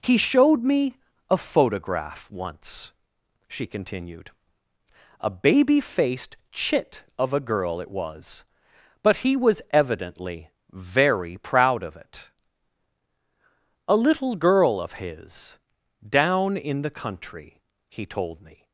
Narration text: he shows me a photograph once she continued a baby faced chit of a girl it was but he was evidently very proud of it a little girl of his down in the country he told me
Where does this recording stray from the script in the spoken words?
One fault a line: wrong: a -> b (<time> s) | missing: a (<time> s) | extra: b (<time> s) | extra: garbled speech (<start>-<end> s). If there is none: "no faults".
wrong: shows -> showed (0.2 s)